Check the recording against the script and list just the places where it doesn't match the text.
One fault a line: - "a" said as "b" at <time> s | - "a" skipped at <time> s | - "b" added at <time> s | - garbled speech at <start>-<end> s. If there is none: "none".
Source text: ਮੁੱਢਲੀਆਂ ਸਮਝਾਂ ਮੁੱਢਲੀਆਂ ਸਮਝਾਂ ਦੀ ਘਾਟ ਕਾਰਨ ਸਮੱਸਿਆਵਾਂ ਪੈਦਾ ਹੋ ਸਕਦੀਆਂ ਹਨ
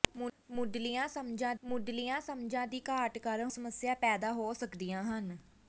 none